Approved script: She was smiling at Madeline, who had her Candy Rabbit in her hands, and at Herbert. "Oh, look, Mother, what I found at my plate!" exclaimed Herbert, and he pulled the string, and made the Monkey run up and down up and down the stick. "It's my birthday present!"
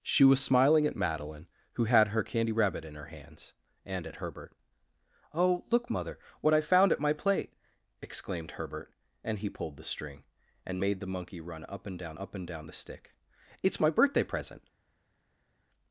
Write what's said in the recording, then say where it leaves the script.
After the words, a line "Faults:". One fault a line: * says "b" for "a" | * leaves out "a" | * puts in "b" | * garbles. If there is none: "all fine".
She was smiling at Madeline, who had her Candy Rabbit in her hands, and at Herbert. "Oh, look, Mother, what I found at my plate!" exclaimed Herbert, and he pulled the string, and made the Monkey run up and down up and down the stick. "It's my birthday present!"
Faults:
all fine